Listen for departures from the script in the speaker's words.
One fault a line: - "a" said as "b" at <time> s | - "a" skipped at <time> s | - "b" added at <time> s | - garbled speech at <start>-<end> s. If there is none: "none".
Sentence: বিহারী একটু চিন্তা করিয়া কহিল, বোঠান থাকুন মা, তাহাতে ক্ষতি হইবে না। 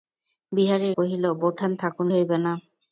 - "একটু চিন্তা করিয়া" skipped at 0.9 s
- "মা তাহাতে ক্ষতি" skipped at 2.1 s